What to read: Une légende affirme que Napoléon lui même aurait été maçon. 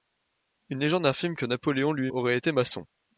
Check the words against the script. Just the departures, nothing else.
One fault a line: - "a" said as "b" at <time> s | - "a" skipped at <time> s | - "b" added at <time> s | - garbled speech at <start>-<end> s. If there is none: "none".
- "même" skipped at 2.1 s